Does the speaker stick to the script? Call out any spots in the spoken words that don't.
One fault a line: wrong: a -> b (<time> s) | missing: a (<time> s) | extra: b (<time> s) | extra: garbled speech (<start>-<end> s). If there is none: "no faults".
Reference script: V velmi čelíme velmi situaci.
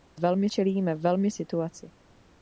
no faults